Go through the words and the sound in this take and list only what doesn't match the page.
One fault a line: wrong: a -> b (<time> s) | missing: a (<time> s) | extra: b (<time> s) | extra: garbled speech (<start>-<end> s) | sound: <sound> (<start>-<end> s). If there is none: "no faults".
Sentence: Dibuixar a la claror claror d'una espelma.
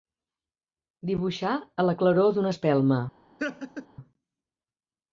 missing: claror (2.3 s)
sound: laugh (3.4-3.9 s)